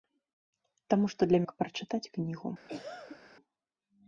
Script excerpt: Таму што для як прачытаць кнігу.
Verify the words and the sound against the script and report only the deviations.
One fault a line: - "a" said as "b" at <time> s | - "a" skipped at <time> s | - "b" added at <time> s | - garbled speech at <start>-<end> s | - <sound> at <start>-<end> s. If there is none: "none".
- cough at 2.7-3.2 s